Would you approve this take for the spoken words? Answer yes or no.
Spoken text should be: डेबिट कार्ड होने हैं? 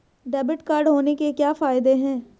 no